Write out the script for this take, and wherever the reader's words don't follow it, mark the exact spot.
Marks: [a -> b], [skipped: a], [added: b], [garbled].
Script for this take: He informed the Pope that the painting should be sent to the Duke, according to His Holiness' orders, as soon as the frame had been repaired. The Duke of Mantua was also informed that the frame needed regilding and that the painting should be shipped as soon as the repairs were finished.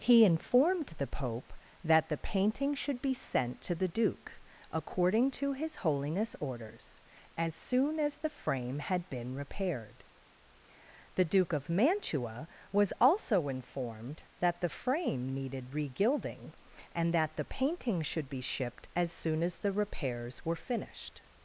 He informed the Pope that the painting should be sent to the Duke, according to His Holiness' orders, as soon as the frame had been repaired. The Duke of Mantua was also informed that the frame needed regilding and that the painting should be shipped as soon as the repairs were finished.